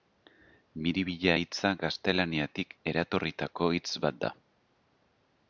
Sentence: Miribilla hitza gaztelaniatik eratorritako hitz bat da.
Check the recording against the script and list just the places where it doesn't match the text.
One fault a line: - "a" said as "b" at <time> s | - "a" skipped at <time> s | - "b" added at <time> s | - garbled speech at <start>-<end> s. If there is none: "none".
none